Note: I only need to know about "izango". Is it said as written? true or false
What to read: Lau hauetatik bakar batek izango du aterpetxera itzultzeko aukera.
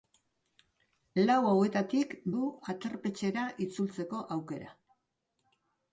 false